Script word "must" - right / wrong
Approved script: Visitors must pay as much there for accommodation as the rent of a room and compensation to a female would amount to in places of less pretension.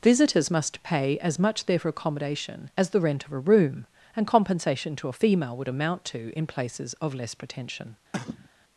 right